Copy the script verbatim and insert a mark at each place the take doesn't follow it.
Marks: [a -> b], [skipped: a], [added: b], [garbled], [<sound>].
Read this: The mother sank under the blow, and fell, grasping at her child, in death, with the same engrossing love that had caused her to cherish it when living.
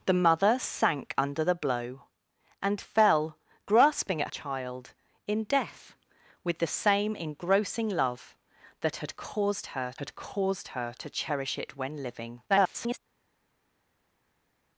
The mother sank under the blow, and fell, grasping at [skipped: her] child, in death, with the same engrossing love that had caused her [added: had caused her] to cherish it when living. [garbled]